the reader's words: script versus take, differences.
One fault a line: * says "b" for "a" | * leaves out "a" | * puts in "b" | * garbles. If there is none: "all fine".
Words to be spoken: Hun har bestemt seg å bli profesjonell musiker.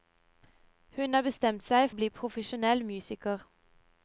all fine